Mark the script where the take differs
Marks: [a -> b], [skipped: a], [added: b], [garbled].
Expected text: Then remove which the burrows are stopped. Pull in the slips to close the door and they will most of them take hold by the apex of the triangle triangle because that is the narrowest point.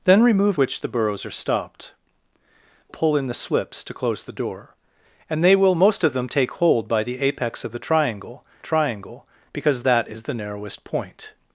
Then remove which the burrows are stopped. Pull in the slips to close the door and they will most of them take hold by the apex of the triangle triangle because that is the narrowest point.